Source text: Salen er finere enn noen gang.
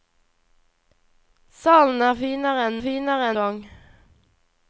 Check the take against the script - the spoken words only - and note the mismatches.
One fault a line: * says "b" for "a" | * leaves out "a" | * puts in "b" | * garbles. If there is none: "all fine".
* says "finere" for "noen"